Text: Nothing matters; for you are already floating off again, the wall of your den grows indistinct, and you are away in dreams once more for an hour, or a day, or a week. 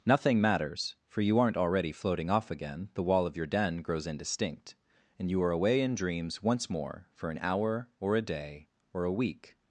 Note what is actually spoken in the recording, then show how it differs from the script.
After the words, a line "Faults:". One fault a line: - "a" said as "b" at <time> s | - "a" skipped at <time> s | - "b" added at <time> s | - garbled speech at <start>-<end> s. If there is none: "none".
Nothing matters; for you aren't already floating off again, the wall of your den grows indistinct, and you are away in dreams once more for an hour, or a day, or a week.
Faults:
- "are" said as "aren't" at 1.4 s